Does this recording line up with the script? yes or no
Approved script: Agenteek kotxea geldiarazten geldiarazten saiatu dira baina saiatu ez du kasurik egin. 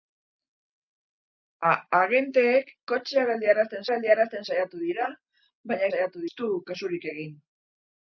yes